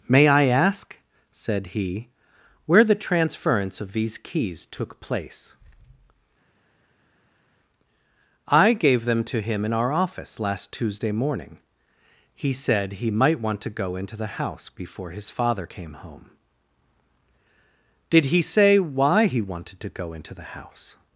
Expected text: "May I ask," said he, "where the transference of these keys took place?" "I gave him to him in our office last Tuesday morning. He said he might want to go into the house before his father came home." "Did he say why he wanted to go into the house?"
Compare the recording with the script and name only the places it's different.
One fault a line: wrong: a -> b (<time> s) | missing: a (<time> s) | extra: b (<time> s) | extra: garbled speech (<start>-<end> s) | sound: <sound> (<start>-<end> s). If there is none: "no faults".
wrong: him -> them (9.1 s)